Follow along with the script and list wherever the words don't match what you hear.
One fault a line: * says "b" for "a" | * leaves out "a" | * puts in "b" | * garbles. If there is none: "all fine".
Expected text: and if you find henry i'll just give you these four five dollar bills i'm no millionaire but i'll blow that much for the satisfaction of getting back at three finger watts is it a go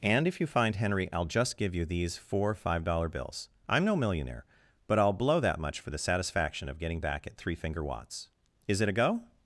all fine